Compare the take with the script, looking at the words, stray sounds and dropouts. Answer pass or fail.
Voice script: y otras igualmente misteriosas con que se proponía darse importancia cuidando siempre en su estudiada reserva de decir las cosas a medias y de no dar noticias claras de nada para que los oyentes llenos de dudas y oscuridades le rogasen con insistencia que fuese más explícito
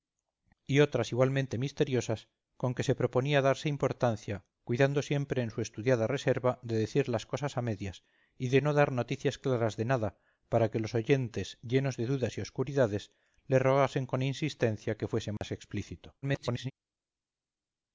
fail